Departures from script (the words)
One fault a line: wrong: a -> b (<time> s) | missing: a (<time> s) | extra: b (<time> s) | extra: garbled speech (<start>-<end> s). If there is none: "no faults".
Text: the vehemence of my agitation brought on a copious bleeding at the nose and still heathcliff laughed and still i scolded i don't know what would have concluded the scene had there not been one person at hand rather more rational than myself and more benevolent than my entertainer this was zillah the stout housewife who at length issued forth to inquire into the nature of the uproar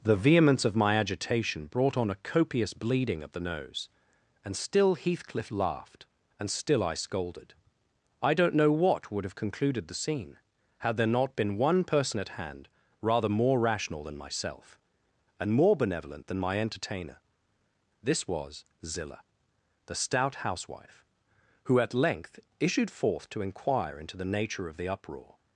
wrong: at -> of (3.2 s)